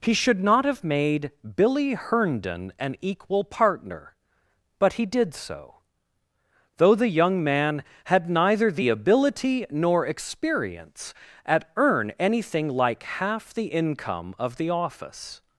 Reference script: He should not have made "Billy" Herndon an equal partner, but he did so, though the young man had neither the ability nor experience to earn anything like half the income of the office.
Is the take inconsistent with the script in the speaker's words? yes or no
yes